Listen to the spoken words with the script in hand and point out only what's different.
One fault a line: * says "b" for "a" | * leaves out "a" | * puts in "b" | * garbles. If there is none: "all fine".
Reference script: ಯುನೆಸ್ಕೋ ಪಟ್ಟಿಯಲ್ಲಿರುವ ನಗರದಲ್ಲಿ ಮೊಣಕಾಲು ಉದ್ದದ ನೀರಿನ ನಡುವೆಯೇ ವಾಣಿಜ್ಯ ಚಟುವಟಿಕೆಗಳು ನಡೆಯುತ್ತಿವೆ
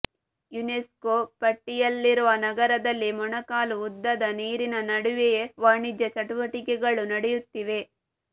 all fine